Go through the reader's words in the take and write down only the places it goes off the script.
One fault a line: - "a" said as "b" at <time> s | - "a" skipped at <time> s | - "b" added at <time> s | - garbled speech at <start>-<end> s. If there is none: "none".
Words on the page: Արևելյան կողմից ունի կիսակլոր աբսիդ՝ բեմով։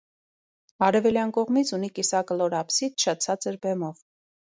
- "շատ ցածր" added at 3.0 s